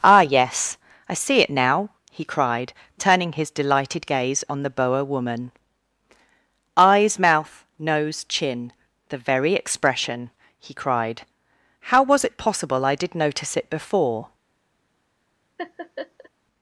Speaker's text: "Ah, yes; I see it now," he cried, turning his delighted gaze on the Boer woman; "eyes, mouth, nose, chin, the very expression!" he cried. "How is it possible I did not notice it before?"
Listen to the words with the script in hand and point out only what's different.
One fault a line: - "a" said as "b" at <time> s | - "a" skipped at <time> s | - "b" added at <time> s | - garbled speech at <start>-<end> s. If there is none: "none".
- "is" said as "was" at 12.0 s
- "not" skipped at 13.1 s